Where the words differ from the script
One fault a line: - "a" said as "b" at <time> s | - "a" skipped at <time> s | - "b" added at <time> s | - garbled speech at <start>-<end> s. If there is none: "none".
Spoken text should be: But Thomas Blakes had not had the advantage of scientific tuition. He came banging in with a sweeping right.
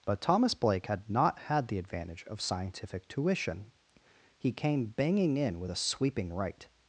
- "Blakes" said as "Blake" at 0.5 s